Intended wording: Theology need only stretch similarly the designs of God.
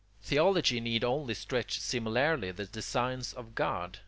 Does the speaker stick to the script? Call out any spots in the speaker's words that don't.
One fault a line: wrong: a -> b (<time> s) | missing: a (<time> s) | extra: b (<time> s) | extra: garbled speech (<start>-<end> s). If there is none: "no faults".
no faults